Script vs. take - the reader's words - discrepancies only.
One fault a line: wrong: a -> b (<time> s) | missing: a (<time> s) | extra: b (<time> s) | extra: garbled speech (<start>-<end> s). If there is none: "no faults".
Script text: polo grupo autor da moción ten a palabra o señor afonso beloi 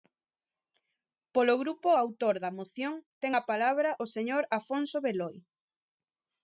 no faults